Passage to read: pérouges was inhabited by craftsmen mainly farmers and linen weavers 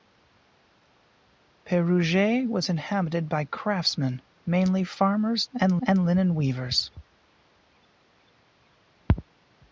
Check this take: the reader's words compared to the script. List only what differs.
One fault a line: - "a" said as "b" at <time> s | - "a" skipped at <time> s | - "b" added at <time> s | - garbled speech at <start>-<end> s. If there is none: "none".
- "and" added at 5.9 s